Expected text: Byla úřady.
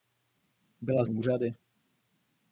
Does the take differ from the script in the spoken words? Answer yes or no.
no